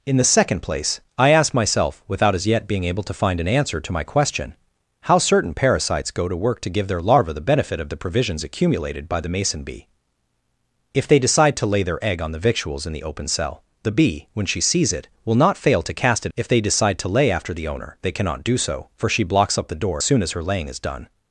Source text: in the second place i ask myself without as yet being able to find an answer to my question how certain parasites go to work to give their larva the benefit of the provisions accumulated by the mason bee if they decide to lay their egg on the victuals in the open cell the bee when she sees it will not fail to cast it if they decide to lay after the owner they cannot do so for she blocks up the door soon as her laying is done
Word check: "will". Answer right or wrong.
right